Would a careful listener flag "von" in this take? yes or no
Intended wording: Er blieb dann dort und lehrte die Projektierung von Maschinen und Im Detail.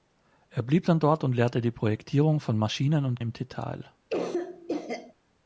no